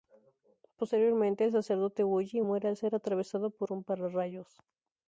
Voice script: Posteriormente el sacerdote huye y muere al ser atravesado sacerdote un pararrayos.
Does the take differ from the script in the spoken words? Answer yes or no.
yes